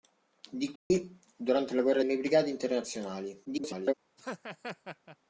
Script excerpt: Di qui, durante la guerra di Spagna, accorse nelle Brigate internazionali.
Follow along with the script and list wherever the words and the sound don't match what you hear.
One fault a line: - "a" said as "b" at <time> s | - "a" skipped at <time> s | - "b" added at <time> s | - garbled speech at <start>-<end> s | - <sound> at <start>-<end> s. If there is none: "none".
- dropout at 0.8-0.9 s
- "di Spagna accorse" skipped at 2.0 s
- garbled speech at 3.4-3.9 s
- laugh at 4.2-5.2 s